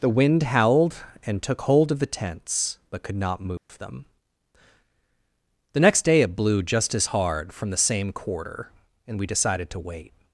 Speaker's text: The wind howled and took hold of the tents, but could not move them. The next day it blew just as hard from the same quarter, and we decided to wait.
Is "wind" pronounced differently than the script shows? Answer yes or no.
no